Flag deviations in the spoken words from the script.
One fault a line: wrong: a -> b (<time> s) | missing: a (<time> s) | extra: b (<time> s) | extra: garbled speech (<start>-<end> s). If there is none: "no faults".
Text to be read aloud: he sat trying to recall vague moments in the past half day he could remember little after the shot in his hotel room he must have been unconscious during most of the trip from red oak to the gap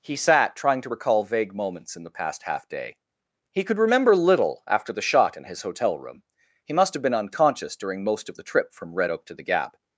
no faults